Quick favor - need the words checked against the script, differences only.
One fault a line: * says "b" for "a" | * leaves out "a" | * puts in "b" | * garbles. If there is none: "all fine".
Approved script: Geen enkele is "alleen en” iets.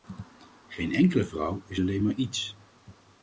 * puts in "vrouw"
* says "maar" for "en"